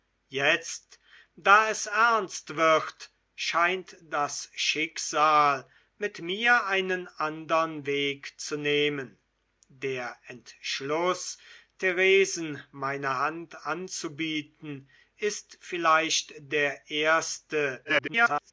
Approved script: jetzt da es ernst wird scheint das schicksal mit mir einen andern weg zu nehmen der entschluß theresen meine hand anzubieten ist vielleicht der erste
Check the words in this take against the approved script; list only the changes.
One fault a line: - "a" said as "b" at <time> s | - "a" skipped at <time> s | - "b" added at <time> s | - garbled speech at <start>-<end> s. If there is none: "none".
- garbled speech at 17.8-18.5 s